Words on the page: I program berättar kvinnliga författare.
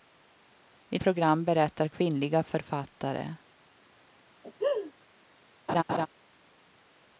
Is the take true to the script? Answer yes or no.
yes